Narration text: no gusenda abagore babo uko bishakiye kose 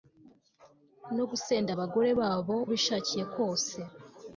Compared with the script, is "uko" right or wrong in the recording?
wrong